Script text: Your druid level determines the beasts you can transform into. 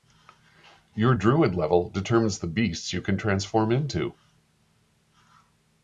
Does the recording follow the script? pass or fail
pass